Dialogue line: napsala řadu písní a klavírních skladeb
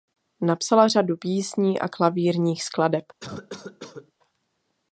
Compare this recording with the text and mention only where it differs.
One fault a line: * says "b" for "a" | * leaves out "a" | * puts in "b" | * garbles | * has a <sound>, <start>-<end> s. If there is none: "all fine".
* has a cough, 3.2-4.1 s